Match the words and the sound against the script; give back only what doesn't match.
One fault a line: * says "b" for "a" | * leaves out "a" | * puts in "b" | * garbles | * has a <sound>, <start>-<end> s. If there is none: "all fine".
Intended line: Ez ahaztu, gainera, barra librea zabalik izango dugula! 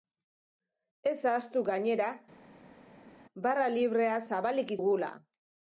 * leaves out "izango"